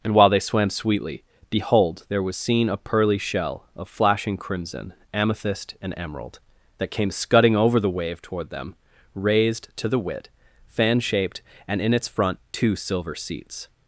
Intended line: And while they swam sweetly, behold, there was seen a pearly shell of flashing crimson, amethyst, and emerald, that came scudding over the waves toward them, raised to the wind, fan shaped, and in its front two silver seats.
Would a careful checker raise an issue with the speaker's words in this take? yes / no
yes